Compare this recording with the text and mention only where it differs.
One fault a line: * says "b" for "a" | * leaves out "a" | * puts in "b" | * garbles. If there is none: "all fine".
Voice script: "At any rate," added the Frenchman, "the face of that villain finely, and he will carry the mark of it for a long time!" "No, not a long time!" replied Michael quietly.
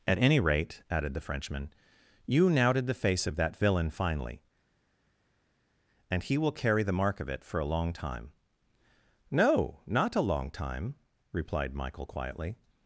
* puts in "you knouted"